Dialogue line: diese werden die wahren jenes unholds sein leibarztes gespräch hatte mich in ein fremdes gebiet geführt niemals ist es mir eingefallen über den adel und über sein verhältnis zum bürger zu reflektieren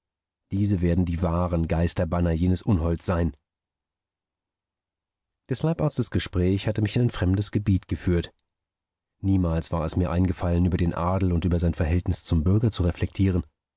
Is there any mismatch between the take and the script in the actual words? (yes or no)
yes